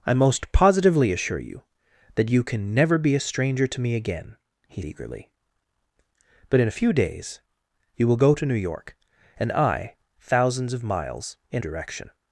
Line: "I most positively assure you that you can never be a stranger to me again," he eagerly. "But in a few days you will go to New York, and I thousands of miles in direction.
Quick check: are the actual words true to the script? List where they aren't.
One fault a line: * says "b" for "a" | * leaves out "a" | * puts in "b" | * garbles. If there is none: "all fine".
all fine